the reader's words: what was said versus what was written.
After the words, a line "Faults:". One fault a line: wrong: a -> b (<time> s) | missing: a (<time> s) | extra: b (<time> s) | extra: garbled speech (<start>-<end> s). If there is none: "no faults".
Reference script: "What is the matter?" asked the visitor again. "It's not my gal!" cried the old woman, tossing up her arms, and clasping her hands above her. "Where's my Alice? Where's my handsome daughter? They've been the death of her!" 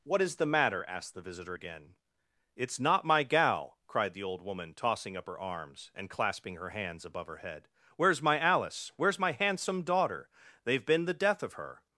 "What is the matter?" asked the visitor again. "It's not my gal!" cried the old woman, tossing up her arms, and clasping her hands above her head. "Where's my Alice? Where's my handsome daughter? They've been the death of her!"
Faults:
extra: head (7.4 s)